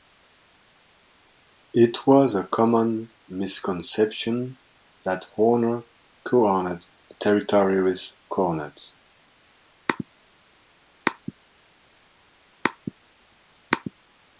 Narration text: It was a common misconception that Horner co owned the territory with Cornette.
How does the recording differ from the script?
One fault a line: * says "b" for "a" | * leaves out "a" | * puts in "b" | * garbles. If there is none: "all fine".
all fine